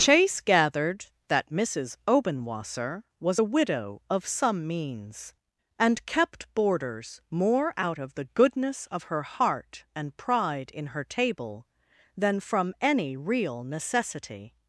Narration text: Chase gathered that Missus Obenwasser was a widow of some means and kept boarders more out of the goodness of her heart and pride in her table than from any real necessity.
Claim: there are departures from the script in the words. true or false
false